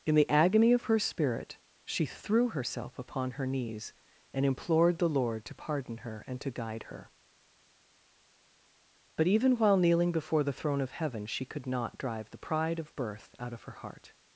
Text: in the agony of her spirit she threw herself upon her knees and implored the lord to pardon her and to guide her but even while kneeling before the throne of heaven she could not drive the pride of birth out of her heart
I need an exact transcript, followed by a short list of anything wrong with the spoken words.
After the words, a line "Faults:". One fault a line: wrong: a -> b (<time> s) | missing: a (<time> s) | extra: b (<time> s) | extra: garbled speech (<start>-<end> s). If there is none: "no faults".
in the agony of her spirit she threw herself upon her knees and implored the lord to pardon her and to guide her but even while kneeling before the throne of heaven she could not drive the pride of birth out of her heart
Faults:
no faults